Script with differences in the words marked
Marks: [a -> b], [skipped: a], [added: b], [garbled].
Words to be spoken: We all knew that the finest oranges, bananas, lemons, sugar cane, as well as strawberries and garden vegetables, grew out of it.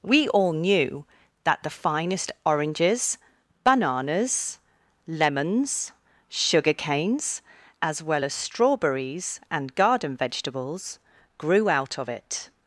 We all knew that the finest oranges, bananas, lemons, sugar [cane, -> canes] as well as strawberries and garden vegetables, grew out of it.